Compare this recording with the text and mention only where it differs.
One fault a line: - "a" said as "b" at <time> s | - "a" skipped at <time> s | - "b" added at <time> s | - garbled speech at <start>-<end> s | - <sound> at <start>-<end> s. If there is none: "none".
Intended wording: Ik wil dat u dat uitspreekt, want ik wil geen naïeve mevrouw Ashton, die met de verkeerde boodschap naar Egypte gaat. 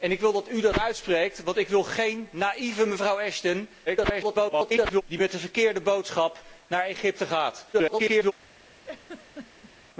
- garbled speech at 3.9-5.0 s
- garbled speech at 7.7-8.3 s
- laugh at 8.8-9.7 s